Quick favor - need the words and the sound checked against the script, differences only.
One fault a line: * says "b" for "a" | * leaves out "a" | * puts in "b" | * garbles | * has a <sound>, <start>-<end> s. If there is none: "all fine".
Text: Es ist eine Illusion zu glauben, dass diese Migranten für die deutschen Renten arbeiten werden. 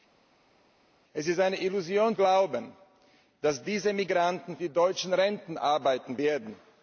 * leaves out "zu"
* leaves out "für"